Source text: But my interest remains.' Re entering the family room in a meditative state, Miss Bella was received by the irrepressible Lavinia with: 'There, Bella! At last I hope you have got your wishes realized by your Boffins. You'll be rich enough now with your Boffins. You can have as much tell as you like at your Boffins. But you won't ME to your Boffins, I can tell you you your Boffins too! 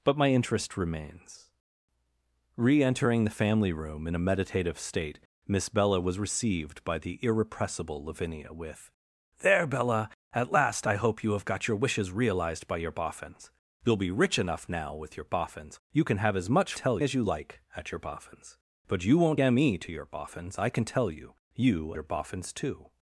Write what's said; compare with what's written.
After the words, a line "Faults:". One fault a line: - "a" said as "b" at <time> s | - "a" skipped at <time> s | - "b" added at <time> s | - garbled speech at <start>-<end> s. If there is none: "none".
But my interest remains.' Re entering the family room in a meditative state, Miss Bella was received by the irrepressible Lavinia with: 'There, Bella! At last I hope you have got your wishes realized by your Boffins. You'll be rich enough now with your Boffins. You can have as much tell as you like at your Boffins. But you won't ME to your Boffins, I can tell you you your Boffins too!
Faults:
none